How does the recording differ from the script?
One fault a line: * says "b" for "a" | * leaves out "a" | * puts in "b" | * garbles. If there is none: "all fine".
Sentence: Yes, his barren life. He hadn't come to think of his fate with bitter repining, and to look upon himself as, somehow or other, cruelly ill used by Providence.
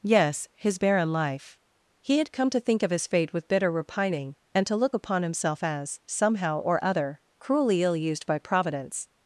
* says "had" for "hadn't"